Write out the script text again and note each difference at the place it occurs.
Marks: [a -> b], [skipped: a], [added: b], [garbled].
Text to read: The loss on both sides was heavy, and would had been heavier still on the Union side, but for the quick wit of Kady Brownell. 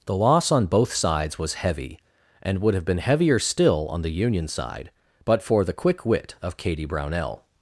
The loss on both sides was heavy, and would [had -> have] been heavier still on the Union side, but for the quick wit of Kady Brownell.